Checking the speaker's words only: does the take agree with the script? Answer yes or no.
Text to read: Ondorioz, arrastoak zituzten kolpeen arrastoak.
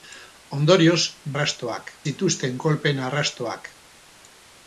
yes